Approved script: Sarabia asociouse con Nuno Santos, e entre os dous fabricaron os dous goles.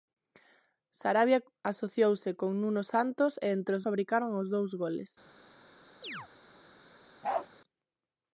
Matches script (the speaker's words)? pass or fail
fail